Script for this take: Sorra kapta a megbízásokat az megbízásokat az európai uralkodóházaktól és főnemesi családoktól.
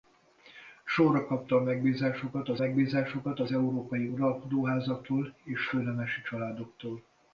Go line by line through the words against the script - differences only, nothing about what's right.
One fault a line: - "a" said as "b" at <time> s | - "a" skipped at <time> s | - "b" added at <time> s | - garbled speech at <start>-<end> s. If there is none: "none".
none